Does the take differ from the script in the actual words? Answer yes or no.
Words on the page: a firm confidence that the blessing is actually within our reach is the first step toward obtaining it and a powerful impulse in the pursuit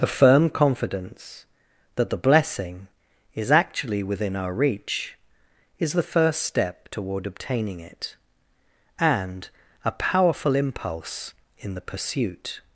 no